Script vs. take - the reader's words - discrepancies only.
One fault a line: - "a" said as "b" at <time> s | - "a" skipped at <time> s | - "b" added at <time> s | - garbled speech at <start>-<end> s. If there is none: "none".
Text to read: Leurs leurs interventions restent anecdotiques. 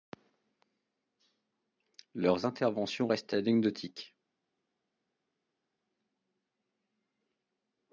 - "leurs" skipped at 2.5 s